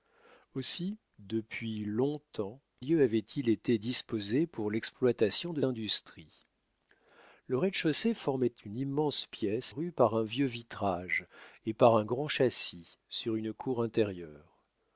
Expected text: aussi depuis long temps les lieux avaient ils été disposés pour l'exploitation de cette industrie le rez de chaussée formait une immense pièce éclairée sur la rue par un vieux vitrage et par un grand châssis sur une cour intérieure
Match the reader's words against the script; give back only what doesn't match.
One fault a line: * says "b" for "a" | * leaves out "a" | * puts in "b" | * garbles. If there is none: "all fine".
* leaves out "les"
* leaves out "cette"
* leaves out "éclairée sur la"